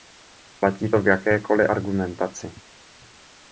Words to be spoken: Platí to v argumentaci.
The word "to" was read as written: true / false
true